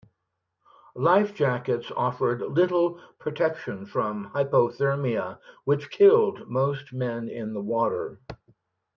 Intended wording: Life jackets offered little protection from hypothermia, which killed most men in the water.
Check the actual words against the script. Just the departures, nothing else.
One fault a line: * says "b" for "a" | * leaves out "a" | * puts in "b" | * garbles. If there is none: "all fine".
all fine